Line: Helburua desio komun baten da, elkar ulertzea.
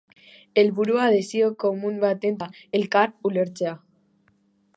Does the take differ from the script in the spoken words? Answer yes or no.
no